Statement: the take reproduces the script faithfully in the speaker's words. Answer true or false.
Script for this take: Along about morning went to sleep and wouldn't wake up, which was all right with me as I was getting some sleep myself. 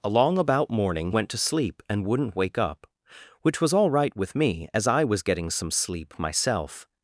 true